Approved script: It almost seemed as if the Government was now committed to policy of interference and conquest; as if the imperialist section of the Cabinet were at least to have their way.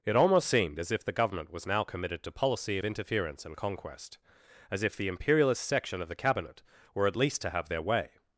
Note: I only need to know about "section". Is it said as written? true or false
true